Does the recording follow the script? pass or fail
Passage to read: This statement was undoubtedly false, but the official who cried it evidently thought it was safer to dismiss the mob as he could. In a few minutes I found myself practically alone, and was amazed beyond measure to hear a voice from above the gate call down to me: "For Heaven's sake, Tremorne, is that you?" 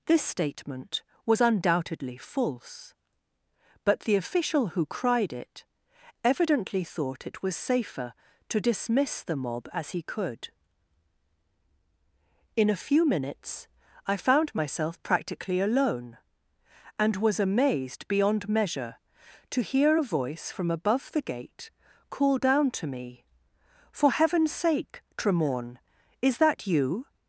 pass